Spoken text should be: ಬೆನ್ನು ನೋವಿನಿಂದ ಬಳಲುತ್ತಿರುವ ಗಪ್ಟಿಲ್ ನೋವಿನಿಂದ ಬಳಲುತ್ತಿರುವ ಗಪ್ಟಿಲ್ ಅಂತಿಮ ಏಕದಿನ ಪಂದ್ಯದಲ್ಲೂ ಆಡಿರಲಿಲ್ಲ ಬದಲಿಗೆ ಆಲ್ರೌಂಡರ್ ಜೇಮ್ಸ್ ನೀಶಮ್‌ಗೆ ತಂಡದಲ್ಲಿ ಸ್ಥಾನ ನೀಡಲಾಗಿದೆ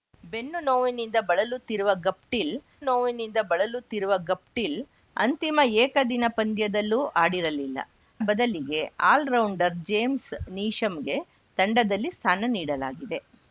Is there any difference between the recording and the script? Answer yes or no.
no